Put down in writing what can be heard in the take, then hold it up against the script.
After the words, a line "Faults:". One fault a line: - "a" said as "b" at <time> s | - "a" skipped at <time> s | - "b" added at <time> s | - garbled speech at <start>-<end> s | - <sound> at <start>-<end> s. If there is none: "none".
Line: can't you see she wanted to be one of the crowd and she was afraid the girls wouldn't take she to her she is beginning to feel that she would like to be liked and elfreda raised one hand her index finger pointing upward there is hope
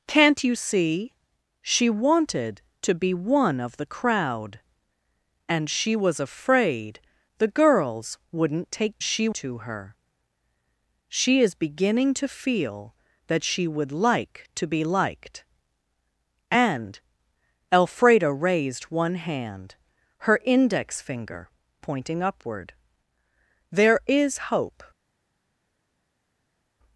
can't you see she wanted to be one of the crowd and she was afraid the girls wouldn't take she to her she is beginning to feel that she would like to be liked and elfreda raised one hand her index finger pointing upward there is hope
Faults:
none